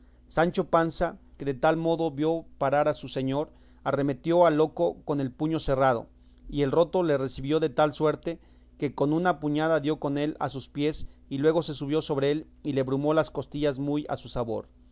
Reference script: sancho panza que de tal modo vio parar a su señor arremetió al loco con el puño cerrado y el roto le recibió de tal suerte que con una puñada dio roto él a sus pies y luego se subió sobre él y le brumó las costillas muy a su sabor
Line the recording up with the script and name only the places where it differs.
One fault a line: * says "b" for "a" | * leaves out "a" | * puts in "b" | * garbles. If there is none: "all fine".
* says "con" for "roto"